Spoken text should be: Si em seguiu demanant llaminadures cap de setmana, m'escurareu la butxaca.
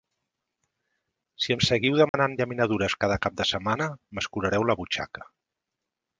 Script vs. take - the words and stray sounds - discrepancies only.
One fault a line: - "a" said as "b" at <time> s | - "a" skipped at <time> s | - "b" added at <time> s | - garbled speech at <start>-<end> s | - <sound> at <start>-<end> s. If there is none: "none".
- dropout at 2.1-2.1 s
- "cada" added at 3.0 s